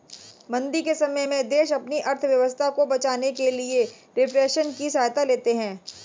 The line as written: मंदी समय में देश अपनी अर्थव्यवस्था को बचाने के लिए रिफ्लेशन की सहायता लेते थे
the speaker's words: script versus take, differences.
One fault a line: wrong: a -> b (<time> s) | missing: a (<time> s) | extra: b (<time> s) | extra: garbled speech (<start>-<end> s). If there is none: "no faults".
extra: के (0.8 s)
wrong: थे -> हैं (5.6 s)